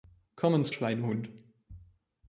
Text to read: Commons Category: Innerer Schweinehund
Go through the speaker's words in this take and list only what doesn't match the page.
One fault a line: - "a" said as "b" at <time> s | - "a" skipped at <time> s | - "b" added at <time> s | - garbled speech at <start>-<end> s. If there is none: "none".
- "Category Innerer" skipped at 0.7 s